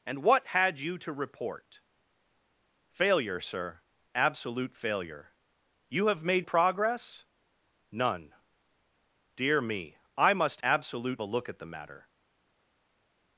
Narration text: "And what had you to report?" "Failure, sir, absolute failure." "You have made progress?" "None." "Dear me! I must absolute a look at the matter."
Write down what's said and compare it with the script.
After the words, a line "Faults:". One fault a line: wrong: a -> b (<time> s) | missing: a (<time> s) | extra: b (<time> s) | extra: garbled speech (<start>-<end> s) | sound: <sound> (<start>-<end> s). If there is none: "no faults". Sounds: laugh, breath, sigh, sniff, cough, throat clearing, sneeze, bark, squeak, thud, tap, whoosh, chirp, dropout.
"And what had you to report?" "Failure, sir, absolute failure." "You have made progress?" "None." "Dear me! I must absolute a look at the matter."
Faults:
no faults